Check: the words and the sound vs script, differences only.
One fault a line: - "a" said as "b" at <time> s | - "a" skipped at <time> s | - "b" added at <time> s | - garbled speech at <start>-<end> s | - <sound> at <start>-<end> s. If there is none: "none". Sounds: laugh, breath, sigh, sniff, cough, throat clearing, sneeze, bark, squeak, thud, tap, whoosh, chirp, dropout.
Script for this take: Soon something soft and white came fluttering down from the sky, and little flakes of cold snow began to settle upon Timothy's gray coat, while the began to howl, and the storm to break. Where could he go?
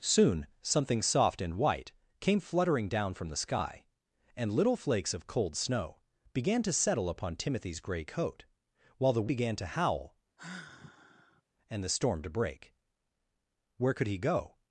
- sigh at 10.4-11.4 s